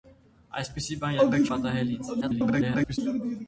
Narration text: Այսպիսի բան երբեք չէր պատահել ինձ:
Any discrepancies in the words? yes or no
yes